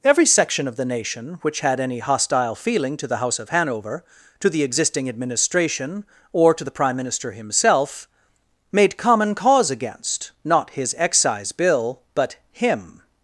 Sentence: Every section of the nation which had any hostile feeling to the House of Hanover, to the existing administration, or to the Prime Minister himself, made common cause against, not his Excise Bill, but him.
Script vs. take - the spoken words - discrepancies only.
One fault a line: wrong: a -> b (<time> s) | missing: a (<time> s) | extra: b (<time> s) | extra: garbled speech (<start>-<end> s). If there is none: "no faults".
no faults